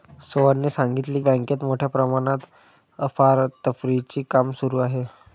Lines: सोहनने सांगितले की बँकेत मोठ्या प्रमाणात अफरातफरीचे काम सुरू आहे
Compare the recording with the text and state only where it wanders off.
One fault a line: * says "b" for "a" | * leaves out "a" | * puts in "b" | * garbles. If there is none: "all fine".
* leaves out "की"